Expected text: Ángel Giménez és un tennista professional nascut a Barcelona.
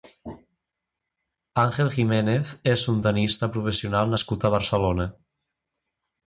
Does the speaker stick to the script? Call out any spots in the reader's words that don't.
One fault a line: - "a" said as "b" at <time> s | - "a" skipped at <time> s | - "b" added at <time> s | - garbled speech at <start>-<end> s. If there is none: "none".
none